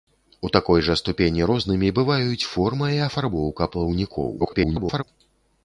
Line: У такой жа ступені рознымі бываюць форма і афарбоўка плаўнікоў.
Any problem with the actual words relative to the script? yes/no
yes